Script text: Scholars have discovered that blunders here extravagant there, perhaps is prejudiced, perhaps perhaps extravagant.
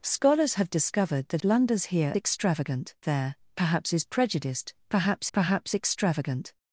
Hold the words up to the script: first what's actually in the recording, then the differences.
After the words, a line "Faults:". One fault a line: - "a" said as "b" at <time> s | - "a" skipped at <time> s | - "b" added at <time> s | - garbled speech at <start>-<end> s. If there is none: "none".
Scholars have discovered that blunders here extravagant there, perhaps is prejudiced, perhaps perhaps extravagant.
Faults:
none